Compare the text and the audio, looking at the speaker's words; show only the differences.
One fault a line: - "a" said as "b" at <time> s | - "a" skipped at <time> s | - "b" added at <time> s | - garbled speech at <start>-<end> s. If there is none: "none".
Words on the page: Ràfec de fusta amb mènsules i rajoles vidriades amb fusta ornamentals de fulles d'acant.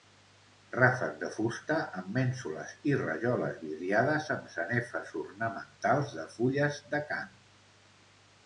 - "fusta" said as "sanefes" at 4.5 s